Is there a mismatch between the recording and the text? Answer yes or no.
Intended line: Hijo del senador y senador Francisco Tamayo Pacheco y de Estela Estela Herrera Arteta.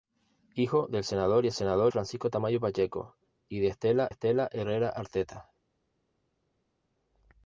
no